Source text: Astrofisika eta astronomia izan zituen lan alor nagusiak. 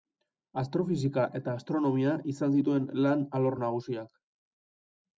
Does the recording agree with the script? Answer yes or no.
yes